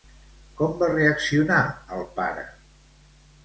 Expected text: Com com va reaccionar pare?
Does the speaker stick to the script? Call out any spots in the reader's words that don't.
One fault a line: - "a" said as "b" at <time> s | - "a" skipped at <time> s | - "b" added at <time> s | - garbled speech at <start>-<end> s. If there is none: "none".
- "com" skipped at 0.7 s
- "el" added at 2.0 s